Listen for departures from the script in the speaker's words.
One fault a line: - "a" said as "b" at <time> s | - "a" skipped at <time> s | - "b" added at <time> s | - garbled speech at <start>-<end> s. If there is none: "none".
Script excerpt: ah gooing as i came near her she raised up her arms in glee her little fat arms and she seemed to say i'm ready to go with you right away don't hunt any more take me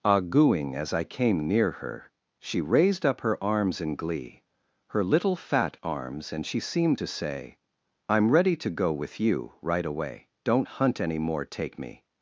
none